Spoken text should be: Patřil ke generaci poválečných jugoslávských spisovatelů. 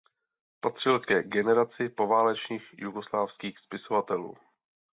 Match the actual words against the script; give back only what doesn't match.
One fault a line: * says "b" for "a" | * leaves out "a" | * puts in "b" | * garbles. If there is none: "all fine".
all fine